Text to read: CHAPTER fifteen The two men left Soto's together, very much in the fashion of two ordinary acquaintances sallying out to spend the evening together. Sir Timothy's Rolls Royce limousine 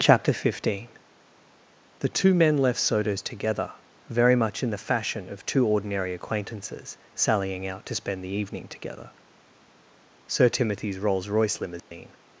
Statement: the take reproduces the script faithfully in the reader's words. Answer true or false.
true